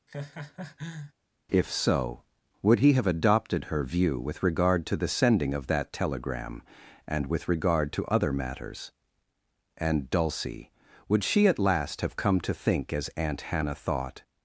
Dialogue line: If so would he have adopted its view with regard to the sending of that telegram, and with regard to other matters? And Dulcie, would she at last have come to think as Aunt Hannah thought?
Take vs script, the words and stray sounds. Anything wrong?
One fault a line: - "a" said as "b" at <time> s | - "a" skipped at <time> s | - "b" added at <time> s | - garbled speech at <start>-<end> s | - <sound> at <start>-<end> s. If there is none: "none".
- laugh at 0.1-1.1 s
- "its" said as "her" at 3.6 s